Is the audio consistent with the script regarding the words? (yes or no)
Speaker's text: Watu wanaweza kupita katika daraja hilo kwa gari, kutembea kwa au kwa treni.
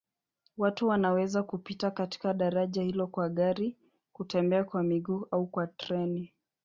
no